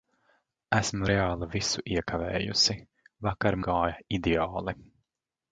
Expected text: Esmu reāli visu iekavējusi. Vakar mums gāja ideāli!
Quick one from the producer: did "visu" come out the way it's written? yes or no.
yes